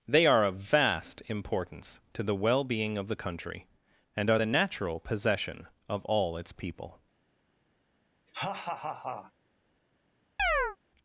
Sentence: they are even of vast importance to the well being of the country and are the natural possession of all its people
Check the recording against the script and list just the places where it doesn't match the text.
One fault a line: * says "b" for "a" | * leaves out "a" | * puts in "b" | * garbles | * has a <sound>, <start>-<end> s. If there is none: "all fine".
* leaves out "even"
* has a laugh, 8.3-9.3 s
* has a chirp, 10.4-10.8 s